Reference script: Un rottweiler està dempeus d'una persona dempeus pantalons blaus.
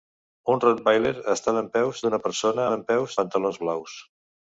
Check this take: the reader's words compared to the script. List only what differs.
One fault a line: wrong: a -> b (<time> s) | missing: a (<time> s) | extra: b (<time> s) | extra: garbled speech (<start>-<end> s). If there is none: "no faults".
no faults